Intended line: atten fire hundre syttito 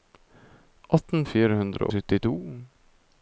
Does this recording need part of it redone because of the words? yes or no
no